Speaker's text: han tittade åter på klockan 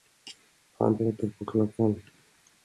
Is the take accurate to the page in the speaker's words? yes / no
no